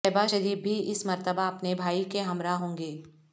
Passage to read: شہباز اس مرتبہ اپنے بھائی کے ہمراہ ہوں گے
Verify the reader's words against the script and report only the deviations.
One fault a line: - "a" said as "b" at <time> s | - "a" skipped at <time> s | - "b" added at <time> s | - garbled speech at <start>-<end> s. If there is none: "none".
- "شریف بھی" added at 0.3 s